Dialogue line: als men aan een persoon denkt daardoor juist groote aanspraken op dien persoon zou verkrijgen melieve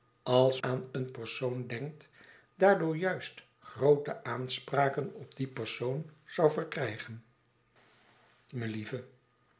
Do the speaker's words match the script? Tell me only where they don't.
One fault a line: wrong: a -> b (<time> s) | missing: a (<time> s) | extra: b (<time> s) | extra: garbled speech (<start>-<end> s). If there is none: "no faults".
missing: men (0.6 s)